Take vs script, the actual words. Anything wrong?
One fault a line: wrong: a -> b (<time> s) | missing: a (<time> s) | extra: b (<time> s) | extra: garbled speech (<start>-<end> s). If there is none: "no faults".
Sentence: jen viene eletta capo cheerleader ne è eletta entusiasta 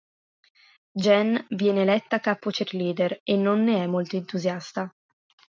extra: e non (3.2 s)
wrong: eletta -> molto (3.9 s)